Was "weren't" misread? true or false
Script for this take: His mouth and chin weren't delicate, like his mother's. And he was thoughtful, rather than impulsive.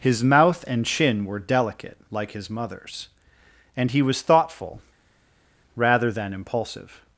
true